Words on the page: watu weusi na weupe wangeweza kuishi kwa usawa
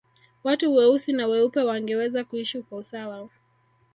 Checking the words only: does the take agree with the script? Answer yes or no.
yes